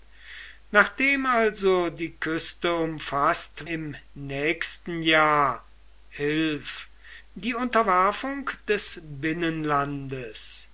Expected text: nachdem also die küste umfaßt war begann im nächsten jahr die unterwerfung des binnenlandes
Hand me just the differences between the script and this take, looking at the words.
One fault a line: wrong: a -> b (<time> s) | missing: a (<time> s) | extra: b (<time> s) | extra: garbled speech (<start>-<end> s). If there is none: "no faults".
missing: war begann (3.7 s)